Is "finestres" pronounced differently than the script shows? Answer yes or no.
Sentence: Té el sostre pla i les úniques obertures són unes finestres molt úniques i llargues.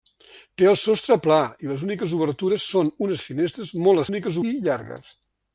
no